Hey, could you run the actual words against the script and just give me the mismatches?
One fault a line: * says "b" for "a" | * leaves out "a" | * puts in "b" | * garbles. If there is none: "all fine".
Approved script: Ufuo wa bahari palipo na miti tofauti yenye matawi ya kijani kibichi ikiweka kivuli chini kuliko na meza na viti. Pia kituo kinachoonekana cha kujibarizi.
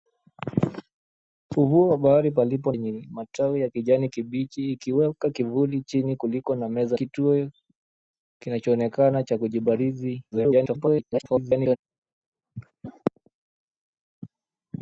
* leaves out "na miti tofauti"
* leaves out "na viti Pia"
* garbles